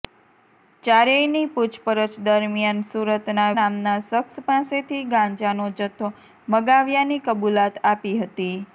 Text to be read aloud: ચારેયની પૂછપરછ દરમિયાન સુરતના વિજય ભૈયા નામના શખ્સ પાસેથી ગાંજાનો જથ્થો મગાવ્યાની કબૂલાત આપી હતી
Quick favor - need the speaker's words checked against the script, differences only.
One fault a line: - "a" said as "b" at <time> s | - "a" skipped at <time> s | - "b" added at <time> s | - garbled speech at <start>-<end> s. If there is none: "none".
- "વિજય ભૈયા" skipped at 3.5 s